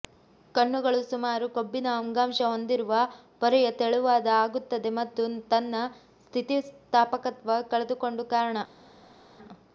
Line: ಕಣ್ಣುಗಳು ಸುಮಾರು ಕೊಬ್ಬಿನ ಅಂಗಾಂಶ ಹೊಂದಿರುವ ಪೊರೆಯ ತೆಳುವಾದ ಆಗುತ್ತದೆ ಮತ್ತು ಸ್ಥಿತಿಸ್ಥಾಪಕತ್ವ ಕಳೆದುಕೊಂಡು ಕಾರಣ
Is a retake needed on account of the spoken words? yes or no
yes